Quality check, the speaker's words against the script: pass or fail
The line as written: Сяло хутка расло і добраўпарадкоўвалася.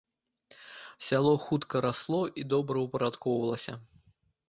pass